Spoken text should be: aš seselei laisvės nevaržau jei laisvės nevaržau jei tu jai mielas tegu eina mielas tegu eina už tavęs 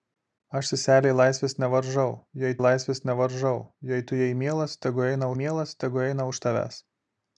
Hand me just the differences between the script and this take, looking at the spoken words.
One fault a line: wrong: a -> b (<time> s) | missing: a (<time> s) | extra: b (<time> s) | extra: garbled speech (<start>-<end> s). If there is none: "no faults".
no faults